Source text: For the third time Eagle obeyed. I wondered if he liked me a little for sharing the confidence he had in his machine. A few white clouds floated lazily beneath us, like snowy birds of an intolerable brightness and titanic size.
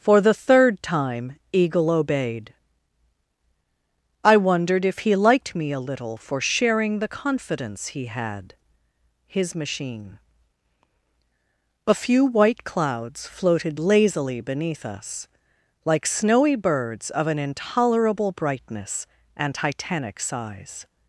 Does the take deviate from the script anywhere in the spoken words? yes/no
yes